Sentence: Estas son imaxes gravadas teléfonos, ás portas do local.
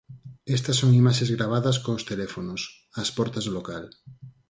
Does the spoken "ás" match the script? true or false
true